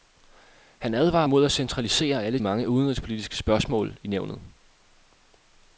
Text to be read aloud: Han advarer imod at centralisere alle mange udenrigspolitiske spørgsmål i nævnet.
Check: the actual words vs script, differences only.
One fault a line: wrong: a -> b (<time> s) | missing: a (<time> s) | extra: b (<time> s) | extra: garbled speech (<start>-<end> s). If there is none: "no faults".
no faults